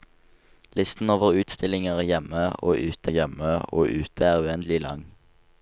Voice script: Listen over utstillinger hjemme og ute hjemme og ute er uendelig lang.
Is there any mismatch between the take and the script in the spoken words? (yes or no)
no